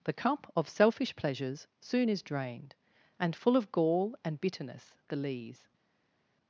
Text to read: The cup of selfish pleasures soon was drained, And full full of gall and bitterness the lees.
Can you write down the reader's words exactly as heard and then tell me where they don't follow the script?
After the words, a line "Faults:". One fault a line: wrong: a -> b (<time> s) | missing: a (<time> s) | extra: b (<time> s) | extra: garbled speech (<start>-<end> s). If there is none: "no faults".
The cup of selfish pleasures soon is drained, And full of gall and bitterness the lees.
Faults:
wrong: was -> is (2.1 s)
missing: full (3.6 s)